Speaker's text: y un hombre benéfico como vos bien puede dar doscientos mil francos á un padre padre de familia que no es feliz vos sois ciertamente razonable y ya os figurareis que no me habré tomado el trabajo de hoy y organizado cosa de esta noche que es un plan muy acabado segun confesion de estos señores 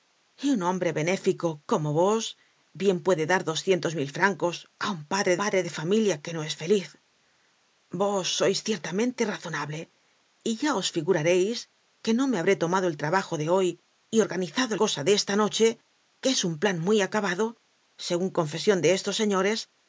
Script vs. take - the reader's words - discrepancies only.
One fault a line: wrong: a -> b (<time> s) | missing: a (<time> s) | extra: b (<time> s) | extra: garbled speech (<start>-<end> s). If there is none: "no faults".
no faults